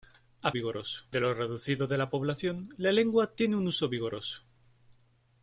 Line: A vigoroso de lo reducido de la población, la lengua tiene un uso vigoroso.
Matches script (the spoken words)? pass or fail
pass